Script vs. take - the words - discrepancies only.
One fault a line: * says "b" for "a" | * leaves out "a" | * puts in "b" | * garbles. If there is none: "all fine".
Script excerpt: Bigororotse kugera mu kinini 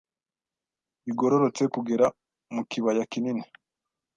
* puts in "kibaya"